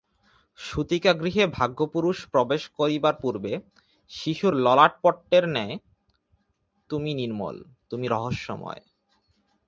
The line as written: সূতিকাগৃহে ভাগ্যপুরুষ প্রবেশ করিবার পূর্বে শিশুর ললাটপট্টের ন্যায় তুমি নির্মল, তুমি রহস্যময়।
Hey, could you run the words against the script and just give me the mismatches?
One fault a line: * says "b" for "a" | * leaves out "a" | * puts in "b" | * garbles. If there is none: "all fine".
all fine